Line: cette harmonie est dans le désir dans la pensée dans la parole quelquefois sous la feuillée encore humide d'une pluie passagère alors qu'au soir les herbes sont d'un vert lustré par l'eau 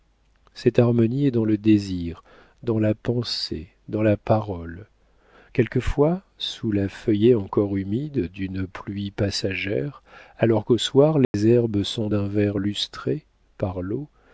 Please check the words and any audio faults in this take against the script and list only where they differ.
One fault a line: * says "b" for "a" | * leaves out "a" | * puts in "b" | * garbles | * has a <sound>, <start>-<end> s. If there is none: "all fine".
* has a dropout, 11.2-11.3 s